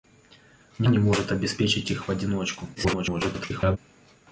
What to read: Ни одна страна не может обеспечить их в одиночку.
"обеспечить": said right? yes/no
yes